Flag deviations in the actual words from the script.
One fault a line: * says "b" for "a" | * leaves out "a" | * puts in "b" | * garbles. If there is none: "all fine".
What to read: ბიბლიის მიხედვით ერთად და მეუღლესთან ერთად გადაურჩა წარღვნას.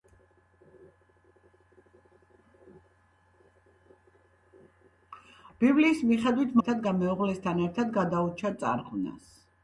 all fine